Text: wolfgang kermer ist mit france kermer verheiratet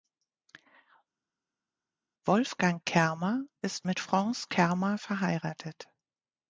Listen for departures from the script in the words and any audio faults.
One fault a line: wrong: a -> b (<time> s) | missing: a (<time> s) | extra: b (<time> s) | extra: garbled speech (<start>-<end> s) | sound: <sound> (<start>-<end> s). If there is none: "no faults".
no faults